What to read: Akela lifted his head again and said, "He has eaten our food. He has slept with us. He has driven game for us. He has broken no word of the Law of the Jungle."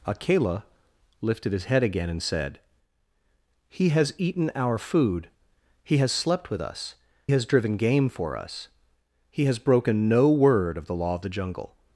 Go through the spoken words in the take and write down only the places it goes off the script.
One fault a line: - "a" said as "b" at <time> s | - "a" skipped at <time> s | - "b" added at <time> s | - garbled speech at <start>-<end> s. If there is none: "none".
- "He" skipped at 7.0 s